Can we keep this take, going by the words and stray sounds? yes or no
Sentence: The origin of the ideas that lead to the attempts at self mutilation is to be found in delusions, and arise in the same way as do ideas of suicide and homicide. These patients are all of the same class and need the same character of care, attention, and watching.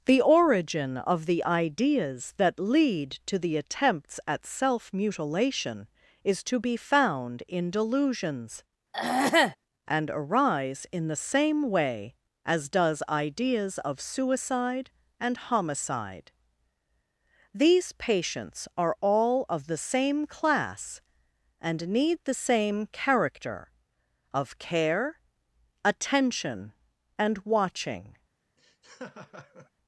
no